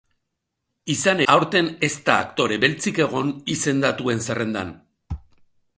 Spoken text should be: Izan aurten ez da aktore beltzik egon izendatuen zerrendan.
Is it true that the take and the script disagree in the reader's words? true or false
false